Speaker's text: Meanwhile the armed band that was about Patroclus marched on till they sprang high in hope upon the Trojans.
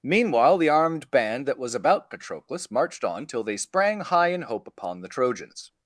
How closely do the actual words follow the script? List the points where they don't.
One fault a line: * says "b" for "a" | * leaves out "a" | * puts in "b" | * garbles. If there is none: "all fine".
all fine